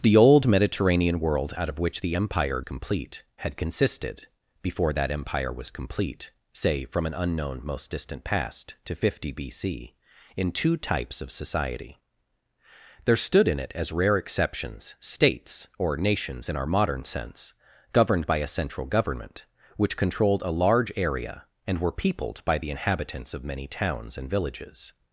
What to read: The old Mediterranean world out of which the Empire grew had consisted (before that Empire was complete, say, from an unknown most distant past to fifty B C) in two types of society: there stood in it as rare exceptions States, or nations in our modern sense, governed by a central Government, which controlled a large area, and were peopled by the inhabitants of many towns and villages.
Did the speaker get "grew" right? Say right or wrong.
wrong